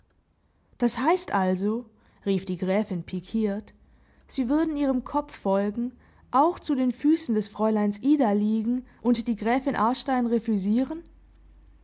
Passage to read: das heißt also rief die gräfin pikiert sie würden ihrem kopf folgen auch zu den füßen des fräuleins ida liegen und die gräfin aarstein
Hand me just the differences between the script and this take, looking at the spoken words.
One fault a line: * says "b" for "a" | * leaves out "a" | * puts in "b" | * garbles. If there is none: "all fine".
all fine